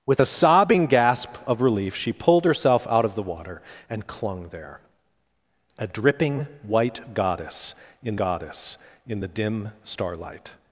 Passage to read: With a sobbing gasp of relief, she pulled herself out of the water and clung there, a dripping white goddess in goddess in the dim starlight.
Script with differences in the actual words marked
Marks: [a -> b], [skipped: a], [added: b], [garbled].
With a sobbing gasp of relief, she pulled herself out of the water and clung there, a dripping white goddess in goddess in the dim starlight.